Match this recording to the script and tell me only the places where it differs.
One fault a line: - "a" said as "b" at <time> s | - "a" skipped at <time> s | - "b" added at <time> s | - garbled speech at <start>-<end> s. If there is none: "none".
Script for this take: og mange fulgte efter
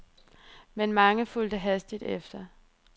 - "og" said as "men" at 0.8 s
- "hastigt" added at 1.6 s